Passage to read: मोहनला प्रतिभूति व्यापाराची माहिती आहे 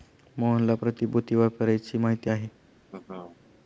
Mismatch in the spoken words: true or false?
false